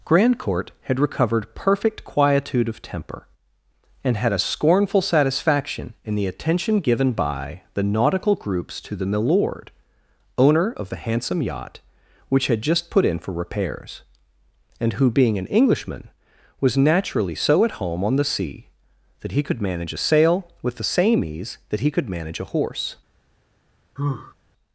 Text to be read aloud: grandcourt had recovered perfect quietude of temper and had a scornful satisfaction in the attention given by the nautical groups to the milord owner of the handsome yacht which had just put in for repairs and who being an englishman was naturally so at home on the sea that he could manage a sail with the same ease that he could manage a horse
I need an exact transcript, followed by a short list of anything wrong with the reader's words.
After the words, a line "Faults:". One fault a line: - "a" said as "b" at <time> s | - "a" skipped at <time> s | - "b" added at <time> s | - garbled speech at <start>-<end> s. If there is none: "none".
grandcourt had recovered perfect quietude of temper and had a scornful satisfaction in the attention given by the nautical groups to the milord owner of the handsome yacht which had just put in for repairs and who being an englishman was naturally so at home on the sea that he could manage a sail with the same ease that he could manage a horse
Faults:
none